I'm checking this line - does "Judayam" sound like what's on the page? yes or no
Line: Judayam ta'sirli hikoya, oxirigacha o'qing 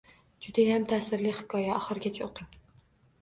yes